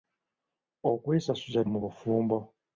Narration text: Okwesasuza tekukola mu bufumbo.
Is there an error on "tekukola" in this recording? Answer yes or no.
yes